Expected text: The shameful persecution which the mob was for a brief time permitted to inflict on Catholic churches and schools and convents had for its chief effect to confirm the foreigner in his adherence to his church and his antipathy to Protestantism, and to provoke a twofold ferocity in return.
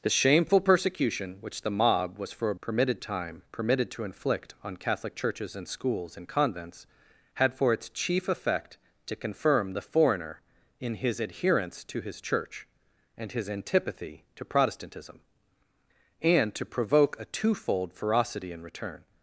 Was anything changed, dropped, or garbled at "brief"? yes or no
yes